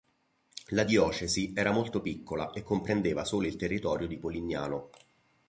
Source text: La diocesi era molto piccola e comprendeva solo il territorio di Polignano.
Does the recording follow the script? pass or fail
pass